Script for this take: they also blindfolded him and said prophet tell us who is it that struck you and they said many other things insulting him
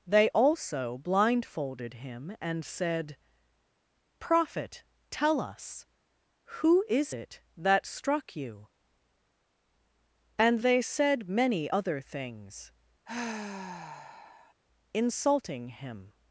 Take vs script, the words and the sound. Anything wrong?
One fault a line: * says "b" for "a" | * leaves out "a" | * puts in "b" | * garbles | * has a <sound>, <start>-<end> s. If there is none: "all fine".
* has a sigh, 13.1-14.5 s